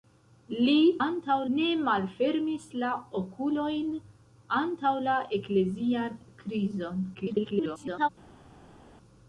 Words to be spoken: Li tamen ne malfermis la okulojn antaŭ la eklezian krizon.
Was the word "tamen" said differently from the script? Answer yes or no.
yes